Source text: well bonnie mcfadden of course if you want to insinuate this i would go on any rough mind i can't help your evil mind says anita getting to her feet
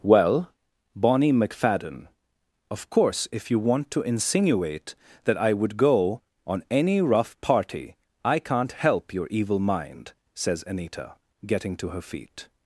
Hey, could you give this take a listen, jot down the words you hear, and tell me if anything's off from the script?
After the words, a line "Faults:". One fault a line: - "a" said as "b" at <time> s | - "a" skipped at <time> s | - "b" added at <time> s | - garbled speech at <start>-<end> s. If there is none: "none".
well bonnie mcfadden of course if you want to insinuate that i would go on any rough party i can't help your evil mind says anita getting to her feet
Faults:
- "this" said as "that" at 5.2 s
- "mind" said as "party" at 7.4 s